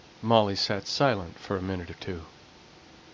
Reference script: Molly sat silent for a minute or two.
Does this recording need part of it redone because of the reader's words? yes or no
no